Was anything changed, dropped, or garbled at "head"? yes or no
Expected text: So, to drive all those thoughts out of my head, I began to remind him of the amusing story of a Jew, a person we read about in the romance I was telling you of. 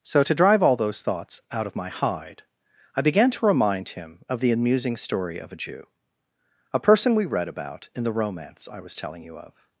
yes